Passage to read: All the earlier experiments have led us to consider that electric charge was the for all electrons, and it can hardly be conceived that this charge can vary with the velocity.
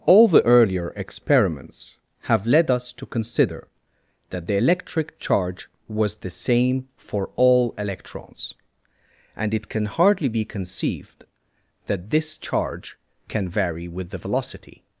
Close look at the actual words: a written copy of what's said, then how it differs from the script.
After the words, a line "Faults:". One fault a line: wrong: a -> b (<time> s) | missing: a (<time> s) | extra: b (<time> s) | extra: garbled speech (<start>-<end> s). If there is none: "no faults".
All the earlier experiments have led us to consider that the electric charge was the same for all electrons, and it can hardly be conceived that this charge can vary with the velocity.
Faults:
extra: the (4.5 s)
extra: same (6.3 s)